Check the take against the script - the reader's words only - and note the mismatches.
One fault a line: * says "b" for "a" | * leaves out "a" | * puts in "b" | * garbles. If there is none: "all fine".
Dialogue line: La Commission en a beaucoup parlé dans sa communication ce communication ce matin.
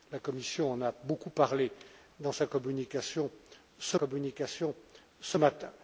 all fine